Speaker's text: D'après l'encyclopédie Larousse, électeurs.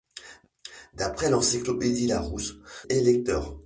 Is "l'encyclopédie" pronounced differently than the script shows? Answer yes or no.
no